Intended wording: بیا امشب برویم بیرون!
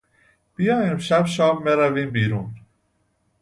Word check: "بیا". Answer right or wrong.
right